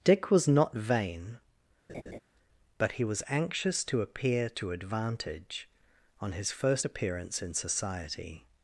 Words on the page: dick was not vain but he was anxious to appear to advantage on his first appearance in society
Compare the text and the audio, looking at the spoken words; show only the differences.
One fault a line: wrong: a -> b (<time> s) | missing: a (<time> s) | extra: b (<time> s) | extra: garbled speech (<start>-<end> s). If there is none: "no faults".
no faults